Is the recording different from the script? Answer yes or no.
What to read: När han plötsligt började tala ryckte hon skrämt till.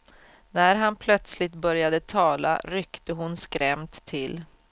no